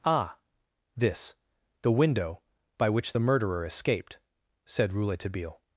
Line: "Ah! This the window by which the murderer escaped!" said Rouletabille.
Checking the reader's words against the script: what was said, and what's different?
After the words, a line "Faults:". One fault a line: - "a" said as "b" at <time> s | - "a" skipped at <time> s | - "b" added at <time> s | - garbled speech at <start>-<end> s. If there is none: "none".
"Ah! This the window by which the murderer escaped!" said Rouletabille.
Faults:
none